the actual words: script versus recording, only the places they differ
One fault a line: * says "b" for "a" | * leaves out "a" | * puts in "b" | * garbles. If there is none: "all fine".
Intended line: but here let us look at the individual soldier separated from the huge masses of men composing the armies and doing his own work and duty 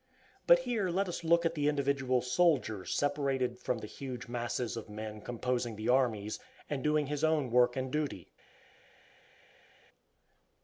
all fine